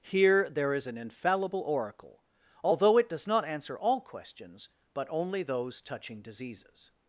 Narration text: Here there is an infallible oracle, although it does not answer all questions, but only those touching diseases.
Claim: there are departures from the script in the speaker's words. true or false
false